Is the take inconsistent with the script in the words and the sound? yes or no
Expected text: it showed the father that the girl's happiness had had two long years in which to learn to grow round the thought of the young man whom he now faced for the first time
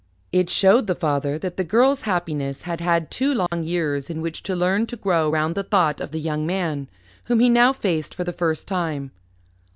yes